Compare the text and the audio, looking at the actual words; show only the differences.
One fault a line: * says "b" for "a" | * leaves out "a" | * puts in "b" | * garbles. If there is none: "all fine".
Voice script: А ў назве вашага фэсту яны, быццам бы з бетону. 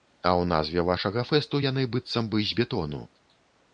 all fine